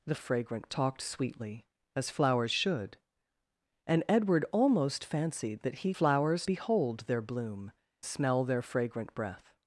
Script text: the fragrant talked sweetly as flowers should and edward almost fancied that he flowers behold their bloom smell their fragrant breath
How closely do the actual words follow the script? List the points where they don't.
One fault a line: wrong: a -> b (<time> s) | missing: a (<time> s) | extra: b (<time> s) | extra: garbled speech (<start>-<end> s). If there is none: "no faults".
no faults